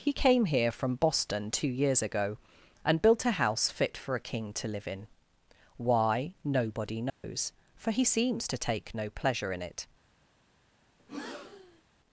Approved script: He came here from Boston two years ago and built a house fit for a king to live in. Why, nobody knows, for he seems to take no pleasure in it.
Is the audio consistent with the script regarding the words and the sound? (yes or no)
no